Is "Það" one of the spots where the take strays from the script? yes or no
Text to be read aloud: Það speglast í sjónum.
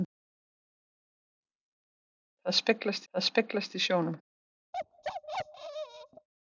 no